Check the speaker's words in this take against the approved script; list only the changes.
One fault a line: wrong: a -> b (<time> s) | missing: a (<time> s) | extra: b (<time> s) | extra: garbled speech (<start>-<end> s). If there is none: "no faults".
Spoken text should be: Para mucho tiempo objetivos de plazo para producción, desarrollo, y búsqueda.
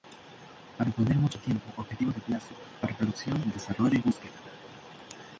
extra: poner (0.9 s)